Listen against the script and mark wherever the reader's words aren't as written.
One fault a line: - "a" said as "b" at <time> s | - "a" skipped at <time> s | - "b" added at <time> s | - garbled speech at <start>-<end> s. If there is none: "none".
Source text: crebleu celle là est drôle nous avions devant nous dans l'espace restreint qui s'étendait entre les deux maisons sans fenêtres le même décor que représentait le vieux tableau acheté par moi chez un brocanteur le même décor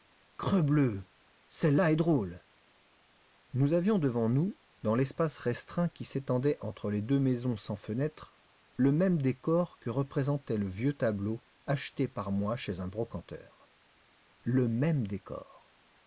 none